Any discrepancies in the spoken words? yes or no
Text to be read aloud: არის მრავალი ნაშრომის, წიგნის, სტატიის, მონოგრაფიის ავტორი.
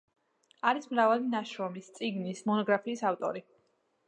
yes